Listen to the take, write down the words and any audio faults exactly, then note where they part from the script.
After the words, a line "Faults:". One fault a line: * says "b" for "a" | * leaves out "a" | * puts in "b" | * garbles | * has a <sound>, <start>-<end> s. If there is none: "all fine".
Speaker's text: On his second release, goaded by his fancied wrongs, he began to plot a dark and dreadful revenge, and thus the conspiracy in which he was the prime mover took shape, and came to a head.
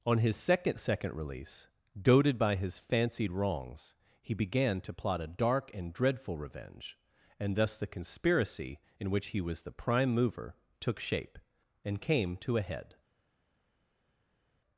On his second second release, goaded by his fancied wrongs, he began to plot a dark and dreadful revenge, and thus the conspiracy in which he was the prime mover took shape, and came to a head.
Faults:
* puts in "second"